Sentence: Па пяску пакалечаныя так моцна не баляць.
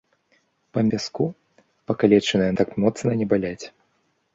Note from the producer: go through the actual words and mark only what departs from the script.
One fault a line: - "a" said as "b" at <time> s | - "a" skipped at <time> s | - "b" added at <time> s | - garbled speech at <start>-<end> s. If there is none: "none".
none